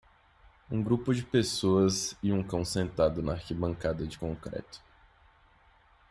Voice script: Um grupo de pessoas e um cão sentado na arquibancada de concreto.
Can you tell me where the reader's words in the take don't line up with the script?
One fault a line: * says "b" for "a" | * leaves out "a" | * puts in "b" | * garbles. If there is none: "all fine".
all fine